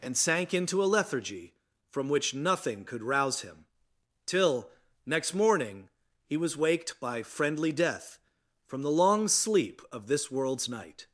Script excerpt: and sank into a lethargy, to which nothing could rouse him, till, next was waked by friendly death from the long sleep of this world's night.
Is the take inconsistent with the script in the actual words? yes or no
yes